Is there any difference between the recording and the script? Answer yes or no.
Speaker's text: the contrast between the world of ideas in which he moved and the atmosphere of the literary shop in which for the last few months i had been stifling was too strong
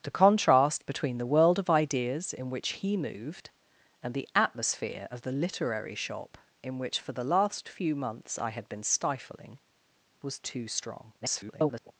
yes